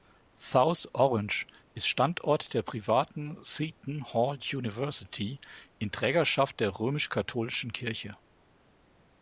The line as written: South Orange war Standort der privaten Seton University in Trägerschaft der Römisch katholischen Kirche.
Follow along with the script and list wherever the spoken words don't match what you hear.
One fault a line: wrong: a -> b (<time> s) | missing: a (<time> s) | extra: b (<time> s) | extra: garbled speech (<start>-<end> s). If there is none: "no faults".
wrong: war -> ist (1.8 s)
extra: Hall (4.1 s)